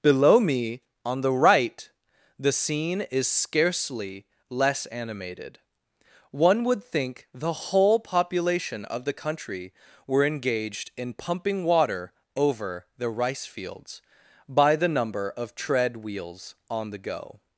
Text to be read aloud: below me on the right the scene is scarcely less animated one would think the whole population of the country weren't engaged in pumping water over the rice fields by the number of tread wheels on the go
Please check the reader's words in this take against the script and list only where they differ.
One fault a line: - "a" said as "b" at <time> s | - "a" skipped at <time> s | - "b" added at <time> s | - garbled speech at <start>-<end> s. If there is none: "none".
- "weren't" said as "were" at 10.1 s